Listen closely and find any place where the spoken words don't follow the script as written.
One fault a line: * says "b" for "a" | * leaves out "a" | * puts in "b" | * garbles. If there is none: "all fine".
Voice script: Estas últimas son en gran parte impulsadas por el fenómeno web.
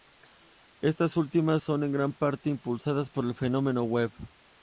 all fine